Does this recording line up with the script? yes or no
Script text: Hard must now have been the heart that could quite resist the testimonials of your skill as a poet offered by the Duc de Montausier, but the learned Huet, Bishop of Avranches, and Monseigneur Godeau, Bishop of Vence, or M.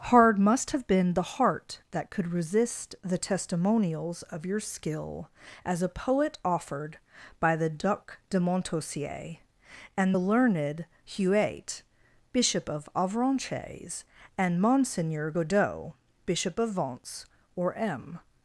no